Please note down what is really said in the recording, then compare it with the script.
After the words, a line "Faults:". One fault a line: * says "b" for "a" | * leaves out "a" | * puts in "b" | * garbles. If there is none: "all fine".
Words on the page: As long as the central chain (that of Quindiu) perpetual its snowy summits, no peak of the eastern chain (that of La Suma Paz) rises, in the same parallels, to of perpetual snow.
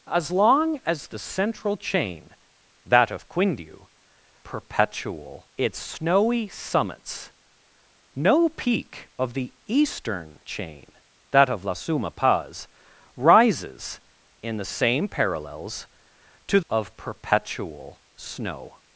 As long as the central chain (that of Quindiu) perpetual its snowy summits, no peak of the eastern chain (that of La Suma Paz) rises, in the same parallels, to of perpetual snow.
Faults:
all fine